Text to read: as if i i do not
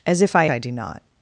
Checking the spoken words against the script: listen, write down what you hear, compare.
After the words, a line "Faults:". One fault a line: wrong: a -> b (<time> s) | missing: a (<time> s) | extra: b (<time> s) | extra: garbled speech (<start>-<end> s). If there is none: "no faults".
as if i i do not
Faults:
no faults